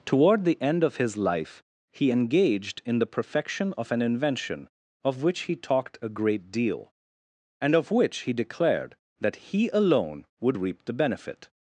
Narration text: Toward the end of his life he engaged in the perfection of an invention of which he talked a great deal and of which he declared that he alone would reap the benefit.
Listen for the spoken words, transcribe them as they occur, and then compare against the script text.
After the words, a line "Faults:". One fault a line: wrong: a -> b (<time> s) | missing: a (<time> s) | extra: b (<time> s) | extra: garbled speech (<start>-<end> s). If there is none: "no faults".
Toward the end of his life he engaged in the perfection of an invention of which he talked a great deal and of which he declared that he alone would reap the benefit.
Faults:
no faults